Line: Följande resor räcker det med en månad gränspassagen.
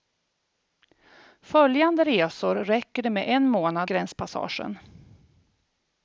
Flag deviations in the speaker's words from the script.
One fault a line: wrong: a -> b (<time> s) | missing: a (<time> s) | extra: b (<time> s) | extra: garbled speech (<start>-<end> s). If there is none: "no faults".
no faults